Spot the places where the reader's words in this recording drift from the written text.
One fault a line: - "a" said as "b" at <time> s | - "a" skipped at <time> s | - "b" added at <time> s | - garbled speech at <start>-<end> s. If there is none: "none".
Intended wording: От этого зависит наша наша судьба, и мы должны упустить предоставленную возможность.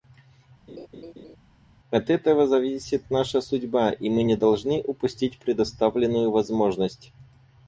- "наша" skipped at 3.4 s
- "не" added at 4.2 s